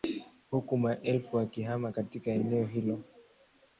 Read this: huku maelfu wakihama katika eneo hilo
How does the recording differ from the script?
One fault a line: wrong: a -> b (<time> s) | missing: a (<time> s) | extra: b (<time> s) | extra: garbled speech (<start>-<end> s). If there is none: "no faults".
no faults